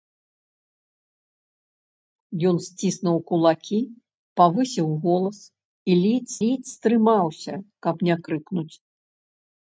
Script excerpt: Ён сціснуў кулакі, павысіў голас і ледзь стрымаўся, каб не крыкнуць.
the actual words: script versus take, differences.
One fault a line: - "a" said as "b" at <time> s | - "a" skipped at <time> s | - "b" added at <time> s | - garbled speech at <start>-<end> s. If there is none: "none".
- "ледзь" added at 6.4 s